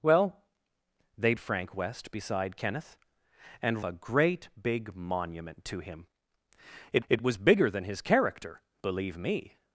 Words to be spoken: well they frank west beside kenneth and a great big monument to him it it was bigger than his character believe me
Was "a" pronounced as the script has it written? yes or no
yes